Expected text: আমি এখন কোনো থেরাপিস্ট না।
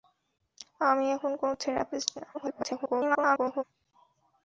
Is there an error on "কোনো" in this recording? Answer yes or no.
no